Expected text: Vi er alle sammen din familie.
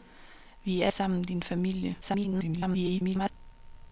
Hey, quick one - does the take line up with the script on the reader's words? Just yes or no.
no